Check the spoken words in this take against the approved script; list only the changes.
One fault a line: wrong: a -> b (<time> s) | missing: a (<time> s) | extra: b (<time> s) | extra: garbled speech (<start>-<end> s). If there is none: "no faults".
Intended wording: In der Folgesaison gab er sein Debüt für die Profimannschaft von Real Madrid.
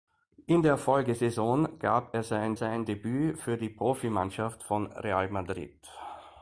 extra: sein (2.5 s)